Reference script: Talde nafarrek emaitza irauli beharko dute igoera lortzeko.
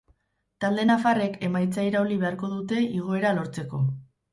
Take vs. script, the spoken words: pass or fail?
pass